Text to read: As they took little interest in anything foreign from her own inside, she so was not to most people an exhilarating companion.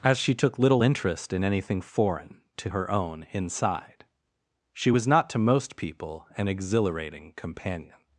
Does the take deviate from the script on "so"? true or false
true